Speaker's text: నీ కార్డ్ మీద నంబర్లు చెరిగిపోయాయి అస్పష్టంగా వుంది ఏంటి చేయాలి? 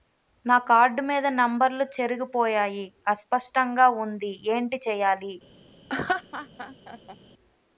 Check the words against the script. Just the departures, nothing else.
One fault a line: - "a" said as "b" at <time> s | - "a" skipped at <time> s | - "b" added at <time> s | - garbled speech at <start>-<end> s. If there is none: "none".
- "నీ" said as "నా" at 0.5 s